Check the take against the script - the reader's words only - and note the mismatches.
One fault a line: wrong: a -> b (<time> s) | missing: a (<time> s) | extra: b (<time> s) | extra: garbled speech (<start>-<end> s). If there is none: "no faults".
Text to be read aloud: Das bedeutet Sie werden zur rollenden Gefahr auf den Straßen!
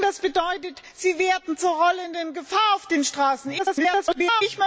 extra: garbled speech (3.6-4.4 s)